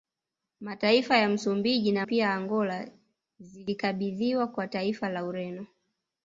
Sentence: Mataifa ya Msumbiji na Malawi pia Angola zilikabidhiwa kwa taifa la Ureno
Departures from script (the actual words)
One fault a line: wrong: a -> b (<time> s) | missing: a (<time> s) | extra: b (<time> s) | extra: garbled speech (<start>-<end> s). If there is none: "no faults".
missing: Malawi (2.0 s)